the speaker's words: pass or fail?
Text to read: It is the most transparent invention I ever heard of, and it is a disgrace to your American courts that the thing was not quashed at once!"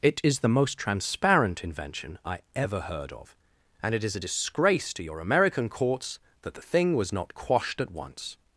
pass